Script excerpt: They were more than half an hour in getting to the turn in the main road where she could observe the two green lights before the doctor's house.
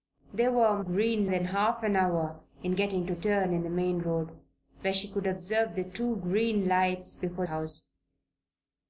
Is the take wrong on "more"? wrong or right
wrong